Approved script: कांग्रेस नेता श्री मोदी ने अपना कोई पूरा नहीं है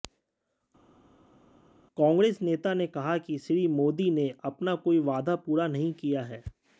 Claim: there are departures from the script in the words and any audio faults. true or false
true